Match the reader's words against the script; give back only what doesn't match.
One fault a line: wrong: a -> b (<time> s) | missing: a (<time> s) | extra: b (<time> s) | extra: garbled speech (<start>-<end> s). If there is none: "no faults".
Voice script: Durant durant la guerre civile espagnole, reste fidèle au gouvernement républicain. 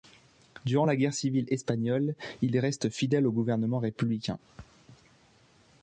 missing: durant (0.9 s)
extra: il (2.4 s)